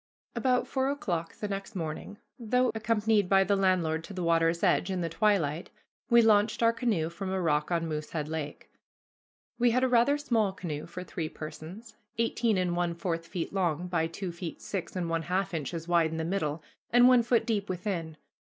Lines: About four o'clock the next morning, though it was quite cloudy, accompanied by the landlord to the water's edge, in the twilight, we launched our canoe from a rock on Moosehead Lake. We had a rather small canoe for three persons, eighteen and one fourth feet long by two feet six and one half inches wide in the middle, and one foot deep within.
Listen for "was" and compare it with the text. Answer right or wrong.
wrong